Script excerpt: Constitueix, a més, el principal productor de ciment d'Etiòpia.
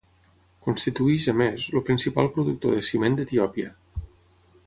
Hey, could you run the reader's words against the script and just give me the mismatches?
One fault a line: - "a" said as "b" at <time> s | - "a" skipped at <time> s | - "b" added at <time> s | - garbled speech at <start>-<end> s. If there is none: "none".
none